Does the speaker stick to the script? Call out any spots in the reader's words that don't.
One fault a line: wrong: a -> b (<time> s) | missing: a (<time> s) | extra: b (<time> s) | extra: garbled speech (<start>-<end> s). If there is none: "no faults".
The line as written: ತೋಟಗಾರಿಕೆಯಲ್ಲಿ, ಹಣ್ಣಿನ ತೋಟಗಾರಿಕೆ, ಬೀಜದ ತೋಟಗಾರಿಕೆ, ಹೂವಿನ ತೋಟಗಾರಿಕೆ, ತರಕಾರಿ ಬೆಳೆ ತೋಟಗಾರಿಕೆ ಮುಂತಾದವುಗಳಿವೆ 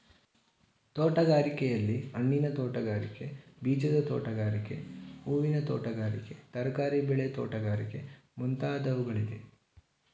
no faults